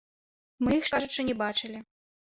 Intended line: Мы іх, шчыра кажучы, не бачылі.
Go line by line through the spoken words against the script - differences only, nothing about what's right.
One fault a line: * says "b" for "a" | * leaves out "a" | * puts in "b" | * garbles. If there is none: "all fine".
* leaves out "шчыра"